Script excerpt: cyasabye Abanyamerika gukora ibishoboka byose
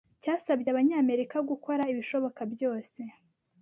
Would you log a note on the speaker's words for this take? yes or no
no